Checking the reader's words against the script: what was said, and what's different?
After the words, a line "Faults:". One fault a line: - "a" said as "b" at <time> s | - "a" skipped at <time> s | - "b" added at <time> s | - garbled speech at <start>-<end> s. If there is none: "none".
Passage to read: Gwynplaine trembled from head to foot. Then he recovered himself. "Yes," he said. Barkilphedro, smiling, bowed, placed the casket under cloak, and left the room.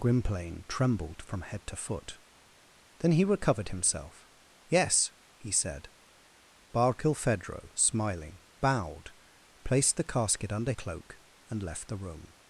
Gwynplaine trembled from head to foot. Then he recovered himself. "Yes," he said. Barkilphedro, smiling, bowed, placed the casket under cloak, and left the room.
Faults:
none